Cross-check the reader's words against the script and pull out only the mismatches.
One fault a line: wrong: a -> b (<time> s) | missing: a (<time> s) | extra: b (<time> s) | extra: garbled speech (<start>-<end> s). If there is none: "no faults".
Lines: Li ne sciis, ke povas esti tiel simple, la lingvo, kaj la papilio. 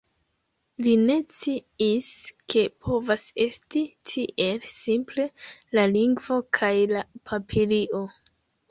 no faults